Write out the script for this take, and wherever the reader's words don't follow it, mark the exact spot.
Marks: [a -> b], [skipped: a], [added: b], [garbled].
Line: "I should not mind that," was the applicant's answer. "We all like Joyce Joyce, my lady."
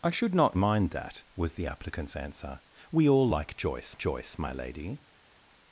"I should not mind that," was the applicant's answer. "We all like Joyce Joyce, my lady."